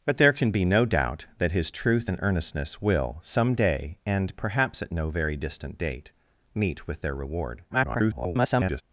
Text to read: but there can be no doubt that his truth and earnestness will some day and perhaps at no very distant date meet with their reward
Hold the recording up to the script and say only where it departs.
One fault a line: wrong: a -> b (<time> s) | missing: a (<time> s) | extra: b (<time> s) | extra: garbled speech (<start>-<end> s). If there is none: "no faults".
extra: garbled speech (7.7-8.8 s)